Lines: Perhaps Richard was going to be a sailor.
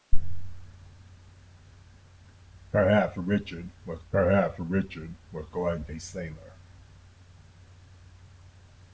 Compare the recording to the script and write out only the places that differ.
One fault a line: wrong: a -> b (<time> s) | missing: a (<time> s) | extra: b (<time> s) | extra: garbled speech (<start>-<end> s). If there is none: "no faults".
extra: perhaps Richard was (4.1 s)
missing: be (5.9 s)